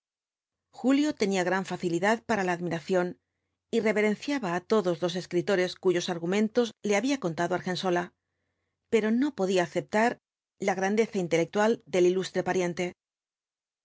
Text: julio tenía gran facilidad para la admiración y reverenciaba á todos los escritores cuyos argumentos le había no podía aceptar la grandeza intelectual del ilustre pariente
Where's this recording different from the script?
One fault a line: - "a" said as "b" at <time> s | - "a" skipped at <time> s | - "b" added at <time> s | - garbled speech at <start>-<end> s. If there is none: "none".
- "contado argensola pero" added at 7.2 s